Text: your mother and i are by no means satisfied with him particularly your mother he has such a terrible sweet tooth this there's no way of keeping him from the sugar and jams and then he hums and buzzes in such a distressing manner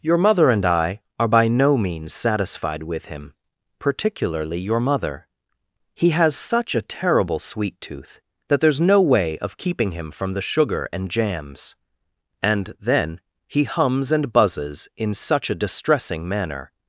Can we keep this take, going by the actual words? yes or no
no